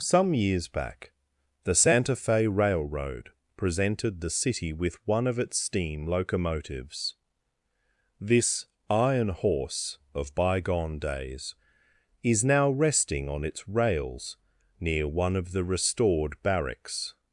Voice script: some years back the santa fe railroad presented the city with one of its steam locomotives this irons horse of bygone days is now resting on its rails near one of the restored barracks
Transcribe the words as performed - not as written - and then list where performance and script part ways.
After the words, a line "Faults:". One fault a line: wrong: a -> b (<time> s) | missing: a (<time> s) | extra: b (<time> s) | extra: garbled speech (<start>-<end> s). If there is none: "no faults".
some years back the santa fe railroad presented the city with one of its steam locomotives this iron horse of bygone days is now resting on its rails near one of the restored barracks
Faults:
wrong: irons -> iron (8.9 s)